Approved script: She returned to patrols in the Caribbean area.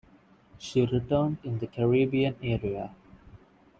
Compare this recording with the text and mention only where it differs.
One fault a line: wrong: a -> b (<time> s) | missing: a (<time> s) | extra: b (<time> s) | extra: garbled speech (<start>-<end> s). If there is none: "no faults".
missing: to patrols (1.4 s)